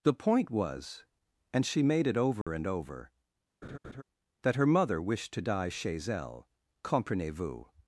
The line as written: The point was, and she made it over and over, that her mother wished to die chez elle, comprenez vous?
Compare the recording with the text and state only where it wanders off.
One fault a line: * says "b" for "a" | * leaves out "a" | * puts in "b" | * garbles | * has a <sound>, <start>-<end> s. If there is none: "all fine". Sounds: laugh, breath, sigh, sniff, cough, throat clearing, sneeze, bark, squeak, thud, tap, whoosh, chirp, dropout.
* has a dropout, 2.4-2.5 s
* has a laugh, 3.6-4.0 s